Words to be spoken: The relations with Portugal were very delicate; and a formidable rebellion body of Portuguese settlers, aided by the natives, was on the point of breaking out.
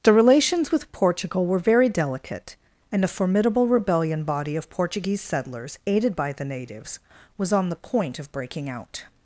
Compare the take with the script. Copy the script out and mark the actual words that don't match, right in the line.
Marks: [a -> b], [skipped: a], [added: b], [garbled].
The relations with Portugal were very delicate; and a formidable rebellion body of Portuguese settlers, aided by the natives, was on the point of breaking out.